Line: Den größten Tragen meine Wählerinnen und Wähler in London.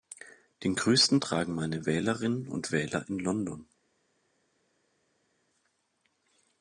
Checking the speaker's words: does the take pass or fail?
pass